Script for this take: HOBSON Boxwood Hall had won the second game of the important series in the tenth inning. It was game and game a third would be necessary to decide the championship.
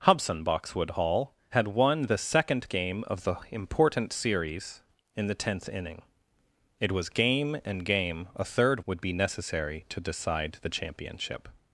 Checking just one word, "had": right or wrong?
right